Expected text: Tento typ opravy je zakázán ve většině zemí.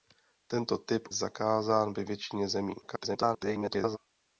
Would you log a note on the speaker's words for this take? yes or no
yes